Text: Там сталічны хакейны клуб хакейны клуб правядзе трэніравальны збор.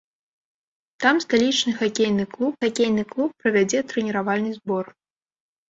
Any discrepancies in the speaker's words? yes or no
no